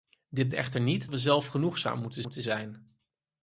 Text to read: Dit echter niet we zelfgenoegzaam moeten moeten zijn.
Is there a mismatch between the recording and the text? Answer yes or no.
no